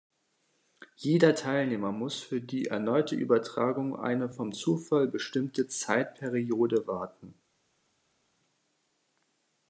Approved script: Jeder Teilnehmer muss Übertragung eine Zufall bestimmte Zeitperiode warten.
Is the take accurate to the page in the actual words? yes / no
no